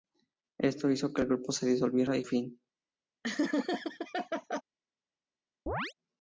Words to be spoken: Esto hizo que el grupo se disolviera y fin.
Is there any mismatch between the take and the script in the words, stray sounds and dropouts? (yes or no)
yes